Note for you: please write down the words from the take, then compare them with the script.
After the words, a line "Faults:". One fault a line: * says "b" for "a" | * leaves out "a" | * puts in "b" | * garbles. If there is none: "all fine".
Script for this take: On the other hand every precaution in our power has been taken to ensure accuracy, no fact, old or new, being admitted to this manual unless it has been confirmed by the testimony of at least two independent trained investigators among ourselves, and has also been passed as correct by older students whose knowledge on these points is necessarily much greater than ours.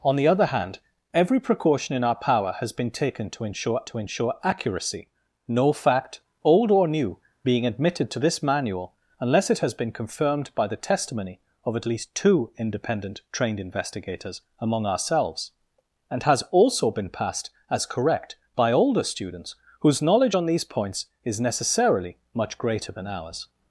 On the other hand every precaution in our power has been taken to ensure to ensure accuracy, no fact, old or new, being admitted to this manual unless it has been confirmed by the testimony of at least two independent trained investigators among ourselves, and has also been passed as correct by older students whose knowledge on these points is necessarily much greater than ours.
Faults:
* puts in "to ensure"